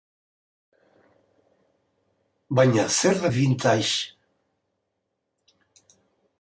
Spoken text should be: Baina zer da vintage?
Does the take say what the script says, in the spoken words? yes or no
yes